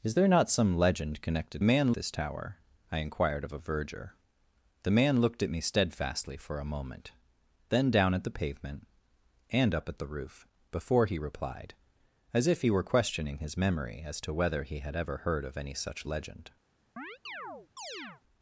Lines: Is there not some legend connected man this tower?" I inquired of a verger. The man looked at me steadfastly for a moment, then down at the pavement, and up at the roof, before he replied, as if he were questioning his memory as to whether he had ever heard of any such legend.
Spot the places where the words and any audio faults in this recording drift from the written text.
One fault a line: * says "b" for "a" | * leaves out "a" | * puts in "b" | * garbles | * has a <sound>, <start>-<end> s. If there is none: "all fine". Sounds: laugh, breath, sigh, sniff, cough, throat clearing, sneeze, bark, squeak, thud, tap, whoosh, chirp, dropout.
* has a chirp, 17.0-18.2 s